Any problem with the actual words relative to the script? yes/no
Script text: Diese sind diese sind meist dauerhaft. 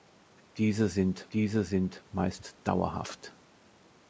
no